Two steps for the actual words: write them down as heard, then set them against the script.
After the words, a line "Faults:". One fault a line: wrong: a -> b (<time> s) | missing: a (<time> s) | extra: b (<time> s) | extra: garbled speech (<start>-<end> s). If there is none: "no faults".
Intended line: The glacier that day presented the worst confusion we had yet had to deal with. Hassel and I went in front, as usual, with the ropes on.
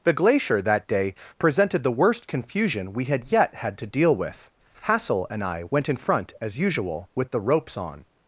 The glacier that day presented the worst confusion we had yet had to deal with. Hassel and I went in front, as usual, with the ropes on.
Faults:
no faults